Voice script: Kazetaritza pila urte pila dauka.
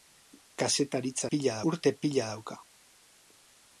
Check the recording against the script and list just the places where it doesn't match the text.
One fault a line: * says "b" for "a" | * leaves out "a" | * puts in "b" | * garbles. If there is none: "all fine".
all fine